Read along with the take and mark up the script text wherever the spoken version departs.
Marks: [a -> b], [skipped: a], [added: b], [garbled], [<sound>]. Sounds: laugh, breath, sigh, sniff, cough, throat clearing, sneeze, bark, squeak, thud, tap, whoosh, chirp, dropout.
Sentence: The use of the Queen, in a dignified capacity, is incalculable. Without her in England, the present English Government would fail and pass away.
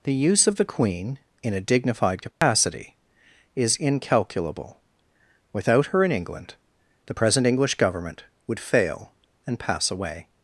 The use of the Queen, in a dignified capacity, [dropout] is incalculable. Without her in England, the present English Government would fail and pass away.